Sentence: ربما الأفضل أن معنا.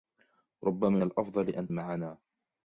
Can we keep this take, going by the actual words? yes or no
yes